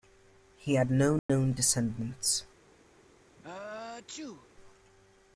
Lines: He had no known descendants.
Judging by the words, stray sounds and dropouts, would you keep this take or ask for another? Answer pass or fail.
fail